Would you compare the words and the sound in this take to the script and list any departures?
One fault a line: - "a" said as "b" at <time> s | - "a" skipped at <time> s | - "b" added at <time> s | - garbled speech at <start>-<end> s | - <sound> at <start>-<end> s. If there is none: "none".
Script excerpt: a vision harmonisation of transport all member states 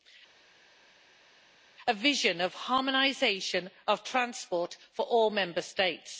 - "of" added at 2.4 s
- "for" added at 4.9 s